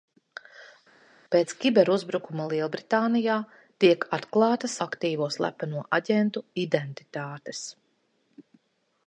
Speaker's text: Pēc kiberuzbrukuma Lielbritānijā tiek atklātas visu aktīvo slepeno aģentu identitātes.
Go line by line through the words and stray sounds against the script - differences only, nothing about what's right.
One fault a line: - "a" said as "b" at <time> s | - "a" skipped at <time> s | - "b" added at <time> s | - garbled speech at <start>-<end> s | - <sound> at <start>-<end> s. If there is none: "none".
- "visu" skipped at 4.8 s